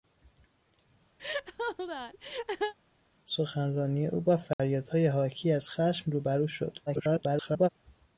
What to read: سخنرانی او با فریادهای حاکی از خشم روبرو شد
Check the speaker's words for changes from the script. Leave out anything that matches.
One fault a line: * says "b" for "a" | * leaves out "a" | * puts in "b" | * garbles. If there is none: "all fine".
* garbles